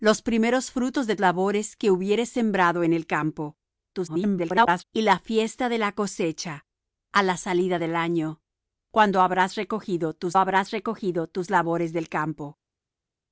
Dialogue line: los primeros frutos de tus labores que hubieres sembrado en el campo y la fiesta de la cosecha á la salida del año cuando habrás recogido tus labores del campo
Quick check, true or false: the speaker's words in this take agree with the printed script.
false